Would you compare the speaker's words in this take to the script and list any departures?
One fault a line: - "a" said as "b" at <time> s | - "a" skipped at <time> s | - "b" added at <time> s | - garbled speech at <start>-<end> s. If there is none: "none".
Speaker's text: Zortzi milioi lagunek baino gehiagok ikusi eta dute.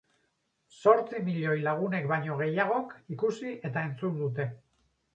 - "entzun" added at 3.9 s